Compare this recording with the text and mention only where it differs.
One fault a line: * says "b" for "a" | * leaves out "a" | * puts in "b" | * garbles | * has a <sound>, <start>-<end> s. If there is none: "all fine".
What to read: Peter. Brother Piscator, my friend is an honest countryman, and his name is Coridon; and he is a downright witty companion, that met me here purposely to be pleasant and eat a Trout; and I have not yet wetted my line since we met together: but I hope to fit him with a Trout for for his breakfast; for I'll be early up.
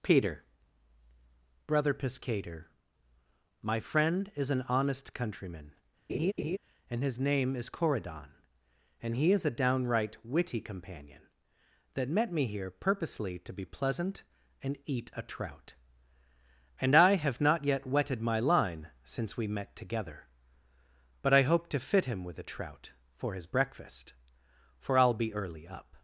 * has a laugh, 6.1-6.6 s
* leaves out "for"